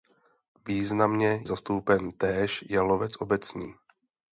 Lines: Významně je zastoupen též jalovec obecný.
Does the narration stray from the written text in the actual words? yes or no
yes